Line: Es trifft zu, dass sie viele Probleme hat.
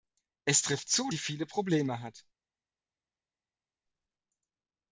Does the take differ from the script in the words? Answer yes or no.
yes